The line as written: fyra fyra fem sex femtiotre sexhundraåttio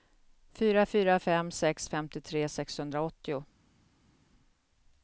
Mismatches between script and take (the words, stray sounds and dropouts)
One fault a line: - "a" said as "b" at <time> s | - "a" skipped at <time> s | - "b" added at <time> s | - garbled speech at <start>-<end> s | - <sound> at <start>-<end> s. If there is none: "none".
none